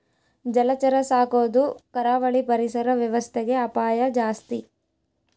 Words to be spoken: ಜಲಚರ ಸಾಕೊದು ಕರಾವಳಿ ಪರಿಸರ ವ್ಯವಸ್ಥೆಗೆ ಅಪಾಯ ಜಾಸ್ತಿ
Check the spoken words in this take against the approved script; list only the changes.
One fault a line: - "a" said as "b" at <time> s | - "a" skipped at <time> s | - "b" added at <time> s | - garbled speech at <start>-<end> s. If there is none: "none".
none